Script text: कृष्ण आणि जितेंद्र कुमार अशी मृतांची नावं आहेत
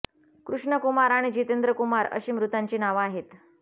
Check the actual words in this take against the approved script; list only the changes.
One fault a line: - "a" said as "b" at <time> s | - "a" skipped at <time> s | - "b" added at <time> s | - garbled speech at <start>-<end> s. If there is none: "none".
- "कुमार" added at 0.8 s